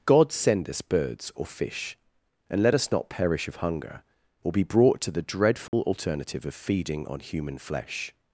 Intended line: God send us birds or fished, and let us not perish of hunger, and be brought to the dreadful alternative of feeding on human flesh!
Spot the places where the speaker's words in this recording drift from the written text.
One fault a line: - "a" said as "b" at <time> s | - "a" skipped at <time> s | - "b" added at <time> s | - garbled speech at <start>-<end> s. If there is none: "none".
- "fished" said as "fish" at 1.4 s
- "and" said as "or" at 4.4 s